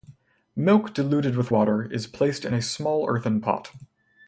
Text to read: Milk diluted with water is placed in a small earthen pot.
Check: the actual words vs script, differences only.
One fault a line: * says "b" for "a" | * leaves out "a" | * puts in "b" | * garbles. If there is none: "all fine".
all fine